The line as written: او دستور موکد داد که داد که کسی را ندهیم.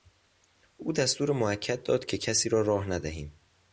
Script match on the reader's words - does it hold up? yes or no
no